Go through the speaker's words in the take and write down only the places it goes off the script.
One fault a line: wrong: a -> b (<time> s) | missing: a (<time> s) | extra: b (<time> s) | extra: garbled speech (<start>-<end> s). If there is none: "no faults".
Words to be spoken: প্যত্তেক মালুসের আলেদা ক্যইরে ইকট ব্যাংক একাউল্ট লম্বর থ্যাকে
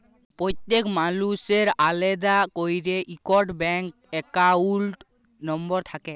no faults